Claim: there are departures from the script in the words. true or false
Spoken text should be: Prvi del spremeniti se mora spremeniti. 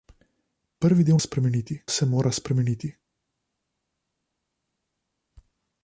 false